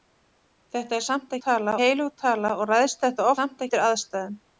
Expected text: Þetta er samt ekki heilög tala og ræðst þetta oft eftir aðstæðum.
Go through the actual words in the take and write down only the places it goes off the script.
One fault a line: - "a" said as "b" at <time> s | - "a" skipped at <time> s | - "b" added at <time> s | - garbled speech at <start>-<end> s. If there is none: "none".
- "ekki" said as "tala" at 1.5 s
- "oft" said as "samt" at 3.4 s